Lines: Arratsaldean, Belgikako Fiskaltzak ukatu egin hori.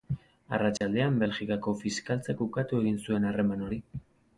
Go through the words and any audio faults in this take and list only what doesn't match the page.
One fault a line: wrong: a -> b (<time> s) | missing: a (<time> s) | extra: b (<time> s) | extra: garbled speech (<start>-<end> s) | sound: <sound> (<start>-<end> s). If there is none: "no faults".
sound: dropout (0.8-0.8 s)
extra: zuen harreman (3.1 s)